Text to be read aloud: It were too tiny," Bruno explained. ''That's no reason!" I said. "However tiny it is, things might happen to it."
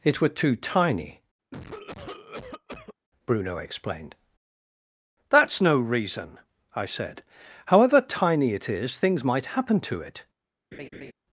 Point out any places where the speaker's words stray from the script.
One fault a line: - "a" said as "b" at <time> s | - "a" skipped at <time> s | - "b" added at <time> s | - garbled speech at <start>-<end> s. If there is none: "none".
none